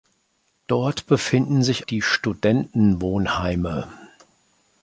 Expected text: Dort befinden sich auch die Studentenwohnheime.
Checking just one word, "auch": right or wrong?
wrong